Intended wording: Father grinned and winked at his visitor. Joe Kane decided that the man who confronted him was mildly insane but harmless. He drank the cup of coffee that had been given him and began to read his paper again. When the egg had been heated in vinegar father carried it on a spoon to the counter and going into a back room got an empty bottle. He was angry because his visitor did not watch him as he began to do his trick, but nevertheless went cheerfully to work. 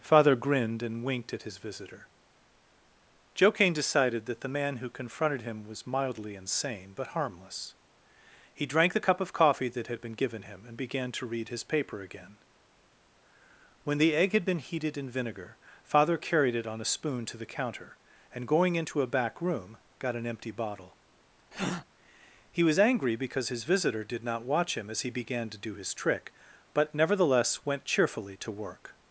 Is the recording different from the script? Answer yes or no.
no